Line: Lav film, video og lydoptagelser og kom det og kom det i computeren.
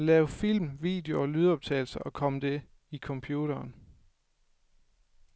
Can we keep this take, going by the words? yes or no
no